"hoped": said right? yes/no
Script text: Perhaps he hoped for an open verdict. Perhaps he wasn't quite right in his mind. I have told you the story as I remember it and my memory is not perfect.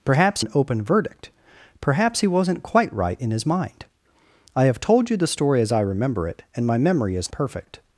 no